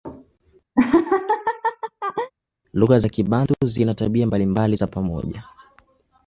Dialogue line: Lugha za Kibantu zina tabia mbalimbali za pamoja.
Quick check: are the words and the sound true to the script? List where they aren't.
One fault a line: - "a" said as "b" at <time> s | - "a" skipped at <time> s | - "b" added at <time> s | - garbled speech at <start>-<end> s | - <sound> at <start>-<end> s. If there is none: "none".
- laugh at 0.8-2.3 s